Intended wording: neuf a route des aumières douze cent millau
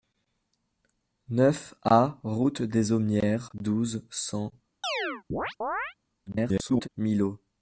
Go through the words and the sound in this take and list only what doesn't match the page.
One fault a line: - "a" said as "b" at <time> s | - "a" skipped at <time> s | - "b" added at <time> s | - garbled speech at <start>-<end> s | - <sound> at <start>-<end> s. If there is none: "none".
- chirp at 4.8-5.9 s
- garbled speech at 6.3-6.9 s